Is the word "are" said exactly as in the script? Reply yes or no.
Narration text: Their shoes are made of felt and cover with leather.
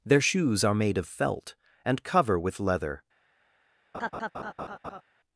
yes